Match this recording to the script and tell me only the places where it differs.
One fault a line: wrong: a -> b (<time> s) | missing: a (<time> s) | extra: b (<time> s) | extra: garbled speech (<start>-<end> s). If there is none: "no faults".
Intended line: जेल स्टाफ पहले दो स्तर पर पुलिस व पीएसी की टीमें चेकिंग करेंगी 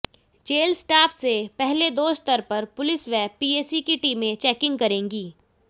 extra: से (1.1 s)